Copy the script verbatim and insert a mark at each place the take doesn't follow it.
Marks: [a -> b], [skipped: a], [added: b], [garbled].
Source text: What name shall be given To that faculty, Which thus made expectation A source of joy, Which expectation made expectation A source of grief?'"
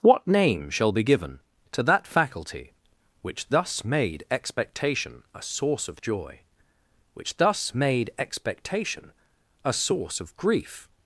What name shall be given To that faculty, Which thus made expectation A source of joy, Which [expectation -> thus] made expectation A source of grief?'"